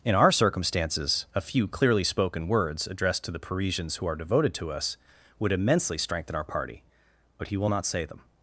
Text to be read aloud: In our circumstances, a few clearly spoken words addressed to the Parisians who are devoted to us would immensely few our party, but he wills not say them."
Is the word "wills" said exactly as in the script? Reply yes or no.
no